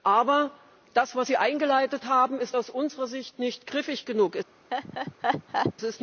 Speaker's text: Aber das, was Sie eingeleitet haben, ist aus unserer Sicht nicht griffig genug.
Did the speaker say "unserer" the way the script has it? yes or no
yes